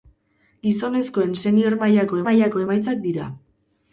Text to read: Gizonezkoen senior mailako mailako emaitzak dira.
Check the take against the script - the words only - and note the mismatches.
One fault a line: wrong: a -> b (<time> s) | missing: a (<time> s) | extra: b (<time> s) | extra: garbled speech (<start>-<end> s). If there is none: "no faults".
no faults